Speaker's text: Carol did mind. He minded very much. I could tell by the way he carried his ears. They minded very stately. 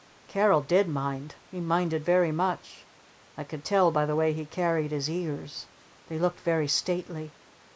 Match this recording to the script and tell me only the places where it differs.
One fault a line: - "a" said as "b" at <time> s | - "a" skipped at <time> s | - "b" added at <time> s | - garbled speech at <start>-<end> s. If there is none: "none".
- "minded" said as "looked" at 6.2 s